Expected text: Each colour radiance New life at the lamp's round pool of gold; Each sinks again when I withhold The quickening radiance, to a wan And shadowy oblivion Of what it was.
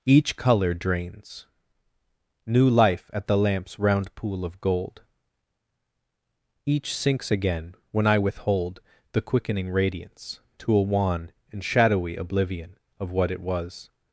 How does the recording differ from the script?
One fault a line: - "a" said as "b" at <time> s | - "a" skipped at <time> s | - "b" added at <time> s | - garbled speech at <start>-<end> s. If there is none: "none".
- "radiance" said as "drains" at 0.7 s